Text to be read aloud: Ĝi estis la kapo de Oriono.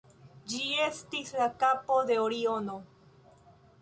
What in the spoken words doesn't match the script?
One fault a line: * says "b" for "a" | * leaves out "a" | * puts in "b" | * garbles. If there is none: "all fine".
all fine